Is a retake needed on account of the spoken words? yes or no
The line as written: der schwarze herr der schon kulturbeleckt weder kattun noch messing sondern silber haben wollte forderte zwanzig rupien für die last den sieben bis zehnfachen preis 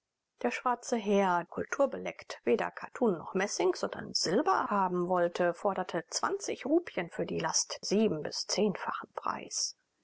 yes